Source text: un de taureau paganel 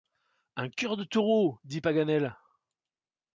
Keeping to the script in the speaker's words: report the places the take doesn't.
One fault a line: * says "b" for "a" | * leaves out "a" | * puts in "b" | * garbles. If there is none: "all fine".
* puts in "cœur"
* puts in "dit"